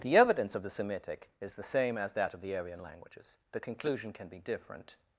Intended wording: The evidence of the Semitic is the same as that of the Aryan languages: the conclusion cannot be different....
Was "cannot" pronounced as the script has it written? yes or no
no